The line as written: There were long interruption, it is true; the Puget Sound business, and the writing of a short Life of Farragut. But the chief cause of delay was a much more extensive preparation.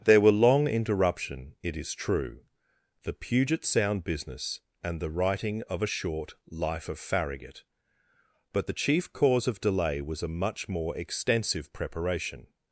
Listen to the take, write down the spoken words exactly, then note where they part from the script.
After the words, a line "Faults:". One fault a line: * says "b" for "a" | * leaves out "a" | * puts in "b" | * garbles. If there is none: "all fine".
There were long interruption, it is true; the Puget Sound business, and the writing of a short Life of Farragut. But the chief cause of delay was a much more extensive preparation.
Faults:
all fine